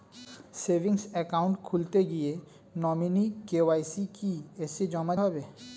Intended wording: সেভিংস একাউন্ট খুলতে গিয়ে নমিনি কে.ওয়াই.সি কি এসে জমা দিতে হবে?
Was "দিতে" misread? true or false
true